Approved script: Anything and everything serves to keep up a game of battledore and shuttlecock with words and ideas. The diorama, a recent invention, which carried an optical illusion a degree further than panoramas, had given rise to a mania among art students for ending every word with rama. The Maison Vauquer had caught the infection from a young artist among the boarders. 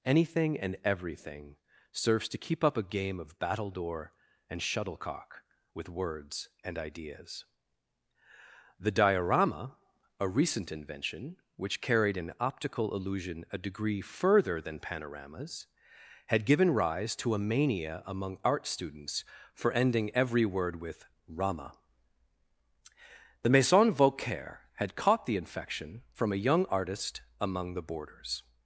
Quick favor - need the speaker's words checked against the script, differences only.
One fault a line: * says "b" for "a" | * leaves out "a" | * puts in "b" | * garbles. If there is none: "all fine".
all fine